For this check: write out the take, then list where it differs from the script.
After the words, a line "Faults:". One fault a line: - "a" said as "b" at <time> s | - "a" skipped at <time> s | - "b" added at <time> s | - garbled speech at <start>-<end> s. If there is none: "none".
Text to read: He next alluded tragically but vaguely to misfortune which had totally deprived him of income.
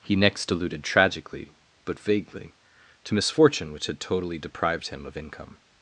He next alluded tragically but vaguely to misfortune which had totally deprived him of income.
Faults:
none